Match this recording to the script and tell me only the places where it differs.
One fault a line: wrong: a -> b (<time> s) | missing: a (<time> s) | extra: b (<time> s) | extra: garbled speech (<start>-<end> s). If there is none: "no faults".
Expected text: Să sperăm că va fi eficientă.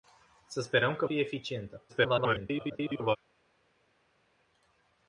missing: va (1.1 s)
extra: garbled speech (1.9-3.2 s)